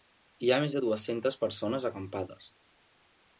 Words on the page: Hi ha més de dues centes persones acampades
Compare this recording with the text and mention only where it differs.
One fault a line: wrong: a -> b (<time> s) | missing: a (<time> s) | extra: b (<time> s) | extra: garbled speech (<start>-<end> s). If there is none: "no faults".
no faults